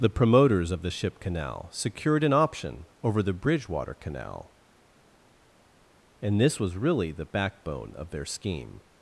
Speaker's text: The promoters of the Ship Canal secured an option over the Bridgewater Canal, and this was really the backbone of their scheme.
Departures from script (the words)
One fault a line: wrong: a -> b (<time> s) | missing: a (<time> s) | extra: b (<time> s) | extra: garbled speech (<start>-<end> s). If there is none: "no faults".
no faults